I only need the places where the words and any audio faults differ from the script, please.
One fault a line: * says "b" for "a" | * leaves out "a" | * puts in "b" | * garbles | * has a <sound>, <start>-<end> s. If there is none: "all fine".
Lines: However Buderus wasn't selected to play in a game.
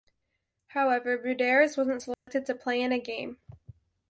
* has a dropout, 2.1-2.3 s